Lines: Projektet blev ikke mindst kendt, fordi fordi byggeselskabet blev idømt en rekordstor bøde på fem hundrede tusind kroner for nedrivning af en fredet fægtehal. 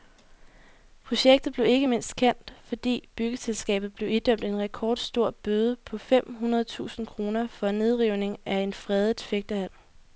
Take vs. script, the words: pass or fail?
fail